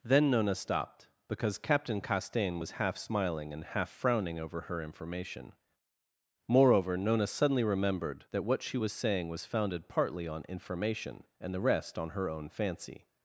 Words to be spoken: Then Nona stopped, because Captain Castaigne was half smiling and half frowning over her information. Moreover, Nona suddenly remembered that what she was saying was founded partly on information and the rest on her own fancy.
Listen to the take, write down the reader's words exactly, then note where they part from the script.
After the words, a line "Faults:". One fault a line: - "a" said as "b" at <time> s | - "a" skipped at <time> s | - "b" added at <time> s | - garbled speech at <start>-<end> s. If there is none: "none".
Then Nona stopped, because Captain Castaigne was half smiling and half frowning over her information. Moreover, Nona suddenly remembered that what she was saying was founded partly on information and the rest on her own fancy.
Faults:
none